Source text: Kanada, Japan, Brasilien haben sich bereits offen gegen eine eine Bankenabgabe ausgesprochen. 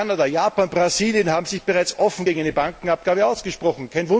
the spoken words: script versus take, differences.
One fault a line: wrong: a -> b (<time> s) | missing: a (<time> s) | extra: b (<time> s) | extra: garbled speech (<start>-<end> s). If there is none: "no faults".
missing: eine (2.5 s)